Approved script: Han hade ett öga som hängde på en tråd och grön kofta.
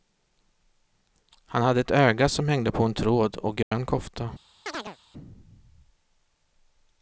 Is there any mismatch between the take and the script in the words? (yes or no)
no